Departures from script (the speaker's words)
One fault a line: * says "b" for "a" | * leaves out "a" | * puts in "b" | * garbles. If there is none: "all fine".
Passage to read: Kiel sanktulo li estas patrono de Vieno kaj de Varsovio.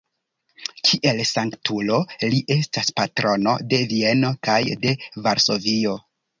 all fine